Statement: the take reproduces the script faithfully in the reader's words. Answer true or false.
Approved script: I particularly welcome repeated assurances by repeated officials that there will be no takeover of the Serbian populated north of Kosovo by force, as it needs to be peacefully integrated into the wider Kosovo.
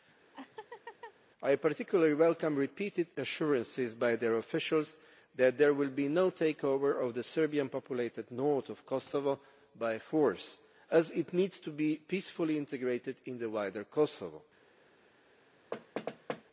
false